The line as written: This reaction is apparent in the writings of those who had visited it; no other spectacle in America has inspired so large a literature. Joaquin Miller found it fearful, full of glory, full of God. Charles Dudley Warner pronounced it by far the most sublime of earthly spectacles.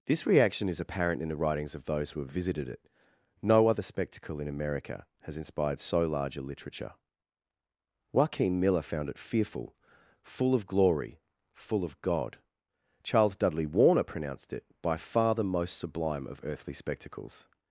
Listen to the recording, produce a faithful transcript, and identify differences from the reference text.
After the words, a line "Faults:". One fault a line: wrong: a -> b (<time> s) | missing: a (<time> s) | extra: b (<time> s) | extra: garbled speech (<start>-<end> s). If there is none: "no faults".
This reaction is apparent in the writings of those who have visited it; no other spectacle in America has inspired so large a literature. Joaquin Miller found it fearful, full of glory, full of God. Charles Dudley Warner pronounced it by far the most sublime of earthly spectacles.
Faults:
wrong: had -> have (2.2 s)